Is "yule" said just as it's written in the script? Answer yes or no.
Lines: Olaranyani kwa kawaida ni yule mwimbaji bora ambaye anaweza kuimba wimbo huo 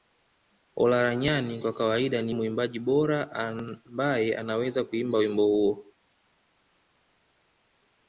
no